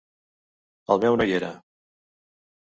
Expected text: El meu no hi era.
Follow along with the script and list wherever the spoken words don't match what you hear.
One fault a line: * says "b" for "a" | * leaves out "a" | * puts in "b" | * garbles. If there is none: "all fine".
all fine